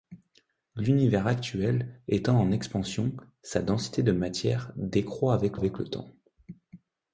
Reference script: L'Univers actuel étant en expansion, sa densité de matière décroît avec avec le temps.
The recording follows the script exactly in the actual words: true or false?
true